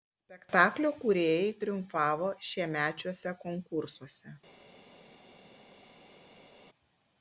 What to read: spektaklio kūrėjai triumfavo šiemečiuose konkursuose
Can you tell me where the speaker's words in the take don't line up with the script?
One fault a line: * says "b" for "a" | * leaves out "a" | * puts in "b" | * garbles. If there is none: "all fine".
all fine